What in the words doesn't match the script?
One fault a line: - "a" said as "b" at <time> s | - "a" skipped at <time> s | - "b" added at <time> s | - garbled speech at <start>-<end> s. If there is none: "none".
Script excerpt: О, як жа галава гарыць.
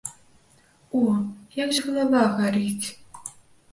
none